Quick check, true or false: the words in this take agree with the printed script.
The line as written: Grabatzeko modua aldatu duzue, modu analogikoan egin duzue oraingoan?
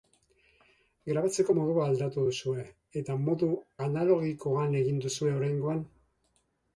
false